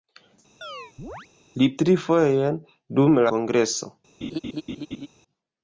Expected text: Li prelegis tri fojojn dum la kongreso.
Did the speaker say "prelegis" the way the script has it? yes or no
no